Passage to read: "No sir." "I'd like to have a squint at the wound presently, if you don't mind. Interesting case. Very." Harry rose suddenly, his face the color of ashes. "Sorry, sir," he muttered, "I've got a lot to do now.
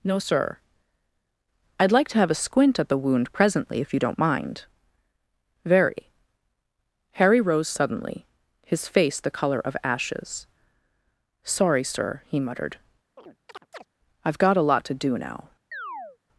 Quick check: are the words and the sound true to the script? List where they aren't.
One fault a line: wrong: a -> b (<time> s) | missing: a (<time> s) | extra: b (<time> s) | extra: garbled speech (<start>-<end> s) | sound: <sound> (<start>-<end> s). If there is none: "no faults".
missing: Interesting case (4.6 s)
sound: chirp (13.2-13.9 s)
sound: chirp (15.7-16.2 s)